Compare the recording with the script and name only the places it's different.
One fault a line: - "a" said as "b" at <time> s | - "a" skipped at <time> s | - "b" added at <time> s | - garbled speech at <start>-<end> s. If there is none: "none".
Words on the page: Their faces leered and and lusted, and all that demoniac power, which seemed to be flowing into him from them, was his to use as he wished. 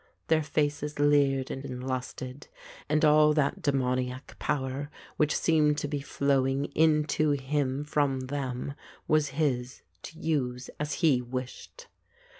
none